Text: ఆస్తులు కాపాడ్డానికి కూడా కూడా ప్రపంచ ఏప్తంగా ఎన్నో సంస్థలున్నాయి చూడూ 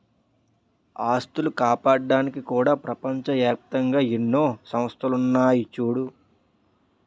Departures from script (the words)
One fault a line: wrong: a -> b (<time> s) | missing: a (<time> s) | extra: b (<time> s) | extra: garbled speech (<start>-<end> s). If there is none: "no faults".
missing: కూడా (2.7 s)